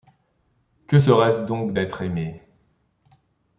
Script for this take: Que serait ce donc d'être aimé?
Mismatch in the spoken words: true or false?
false